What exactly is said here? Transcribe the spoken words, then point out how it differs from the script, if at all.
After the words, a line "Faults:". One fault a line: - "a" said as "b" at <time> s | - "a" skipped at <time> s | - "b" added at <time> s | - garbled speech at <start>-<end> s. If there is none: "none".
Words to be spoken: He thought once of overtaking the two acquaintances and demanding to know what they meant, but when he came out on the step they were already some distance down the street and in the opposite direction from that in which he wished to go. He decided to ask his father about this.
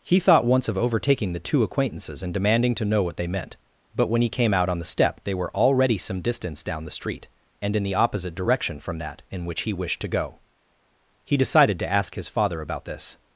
He thought once of overtaking the two acquaintances and demanding to know what they meant, but when he came out on the step they were already some distance down the street and in the opposite direction from that in which he wished to go. He decided to ask his father about this.
Faults:
none